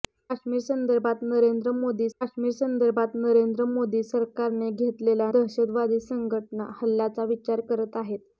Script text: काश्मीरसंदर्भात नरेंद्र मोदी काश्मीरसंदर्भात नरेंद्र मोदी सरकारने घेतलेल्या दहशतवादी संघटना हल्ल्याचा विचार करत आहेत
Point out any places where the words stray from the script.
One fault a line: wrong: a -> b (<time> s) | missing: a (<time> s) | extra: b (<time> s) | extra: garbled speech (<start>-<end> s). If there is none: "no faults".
no faults